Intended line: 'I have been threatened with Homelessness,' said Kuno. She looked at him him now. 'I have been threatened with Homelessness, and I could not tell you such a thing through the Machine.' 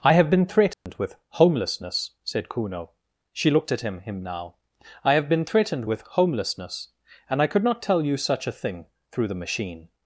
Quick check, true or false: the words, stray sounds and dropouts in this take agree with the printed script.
false